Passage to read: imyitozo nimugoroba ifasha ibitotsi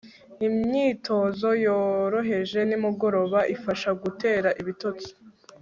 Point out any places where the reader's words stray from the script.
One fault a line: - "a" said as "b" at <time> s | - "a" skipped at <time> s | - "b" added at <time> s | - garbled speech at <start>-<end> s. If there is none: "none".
- "yoroheje" added at 1.6 s
- "gutera" added at 4.0 s